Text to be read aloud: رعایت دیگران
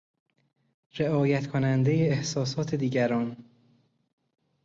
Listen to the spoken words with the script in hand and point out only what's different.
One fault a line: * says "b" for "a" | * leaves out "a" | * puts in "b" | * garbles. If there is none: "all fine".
* puts in "کنندهی احساسات"